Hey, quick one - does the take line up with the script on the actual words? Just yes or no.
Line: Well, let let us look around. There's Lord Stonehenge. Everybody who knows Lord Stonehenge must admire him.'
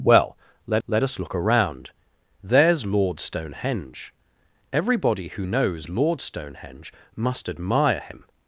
yes